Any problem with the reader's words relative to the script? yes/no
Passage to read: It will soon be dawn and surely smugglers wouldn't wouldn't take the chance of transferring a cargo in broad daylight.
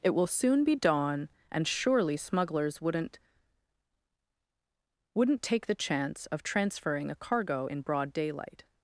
no